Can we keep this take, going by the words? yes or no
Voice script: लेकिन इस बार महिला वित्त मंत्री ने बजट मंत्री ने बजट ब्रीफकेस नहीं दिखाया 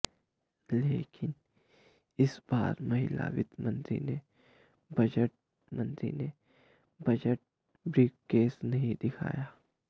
yes